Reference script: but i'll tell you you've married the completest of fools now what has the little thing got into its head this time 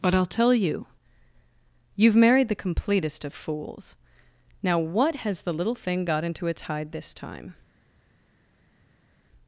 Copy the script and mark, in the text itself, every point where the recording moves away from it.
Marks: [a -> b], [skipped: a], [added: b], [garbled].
but i'll tell you you've married the completest of fools now what has the little thing got into its [head -> hide] this time